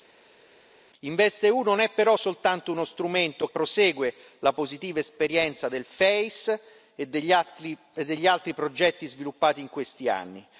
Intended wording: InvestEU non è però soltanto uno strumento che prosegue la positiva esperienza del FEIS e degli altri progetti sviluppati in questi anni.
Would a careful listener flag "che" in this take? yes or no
yes